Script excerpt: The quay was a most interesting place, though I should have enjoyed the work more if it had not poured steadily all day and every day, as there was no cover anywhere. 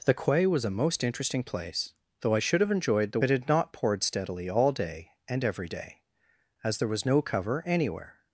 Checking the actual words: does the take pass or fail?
fail